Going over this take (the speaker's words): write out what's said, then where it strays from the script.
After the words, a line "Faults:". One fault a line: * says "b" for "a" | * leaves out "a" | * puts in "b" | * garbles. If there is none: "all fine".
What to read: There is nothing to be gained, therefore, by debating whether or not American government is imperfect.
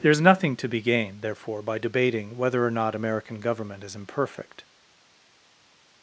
There is nothing to be gained, therefore, by debating whether or not American government is imperfect.
Faults:
all fine